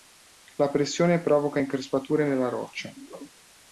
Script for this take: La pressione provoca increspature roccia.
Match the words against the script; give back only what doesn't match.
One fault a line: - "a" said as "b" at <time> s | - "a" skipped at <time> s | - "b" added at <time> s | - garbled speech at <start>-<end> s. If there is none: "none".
- "nella" added at 2.3 s